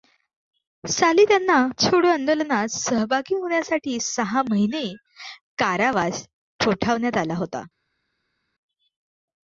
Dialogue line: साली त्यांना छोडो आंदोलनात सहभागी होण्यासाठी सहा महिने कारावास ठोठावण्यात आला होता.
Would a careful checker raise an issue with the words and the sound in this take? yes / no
no